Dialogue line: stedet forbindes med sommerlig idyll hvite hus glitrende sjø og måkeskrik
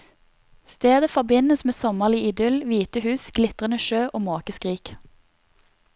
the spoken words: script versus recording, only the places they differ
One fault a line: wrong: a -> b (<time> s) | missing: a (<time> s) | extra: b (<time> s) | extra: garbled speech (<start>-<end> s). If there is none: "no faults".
no faults